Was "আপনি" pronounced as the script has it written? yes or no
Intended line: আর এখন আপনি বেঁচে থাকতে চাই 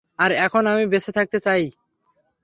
no